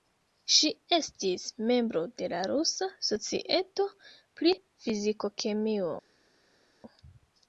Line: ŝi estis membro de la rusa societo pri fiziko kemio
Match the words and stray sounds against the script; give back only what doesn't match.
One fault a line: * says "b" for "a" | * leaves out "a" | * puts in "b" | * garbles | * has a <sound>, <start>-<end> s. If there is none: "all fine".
all fine